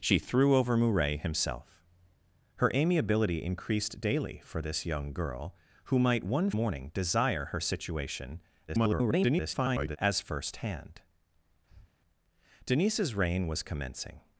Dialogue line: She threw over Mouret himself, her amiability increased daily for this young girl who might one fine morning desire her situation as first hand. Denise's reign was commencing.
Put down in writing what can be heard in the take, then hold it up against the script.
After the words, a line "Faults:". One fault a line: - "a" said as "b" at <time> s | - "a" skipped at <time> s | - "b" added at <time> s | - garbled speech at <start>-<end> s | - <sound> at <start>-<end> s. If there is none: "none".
She threw over Mouret himself, her amiability increased daily for this young girl who might one morning desire her situation [garbled] as first hand. Denise's reign was commencing.
Faults:
- "fine" skipped at 6.5 s
- garbled speech at 8.7-10.0 s
- breath at 11.7-11.9 s